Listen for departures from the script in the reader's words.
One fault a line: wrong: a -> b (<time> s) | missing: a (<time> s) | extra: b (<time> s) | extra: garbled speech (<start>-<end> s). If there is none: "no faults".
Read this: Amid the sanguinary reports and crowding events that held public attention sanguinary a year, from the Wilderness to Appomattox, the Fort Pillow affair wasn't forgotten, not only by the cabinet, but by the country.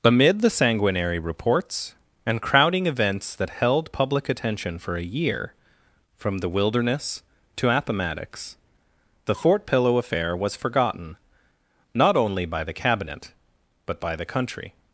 wrong: sanguinary -> for (4.8 s)
wrong: wasn't -> was (10.3 s)